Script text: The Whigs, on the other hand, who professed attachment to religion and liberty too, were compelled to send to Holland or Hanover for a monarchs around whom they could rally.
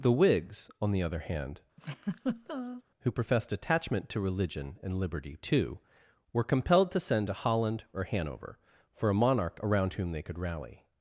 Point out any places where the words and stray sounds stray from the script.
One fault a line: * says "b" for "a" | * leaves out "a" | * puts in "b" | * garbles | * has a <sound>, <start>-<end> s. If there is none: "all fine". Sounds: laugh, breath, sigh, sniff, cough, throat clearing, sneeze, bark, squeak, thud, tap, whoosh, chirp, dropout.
* has a laugh, 1.8-2.8 s
* says "monarch" for "monarchs"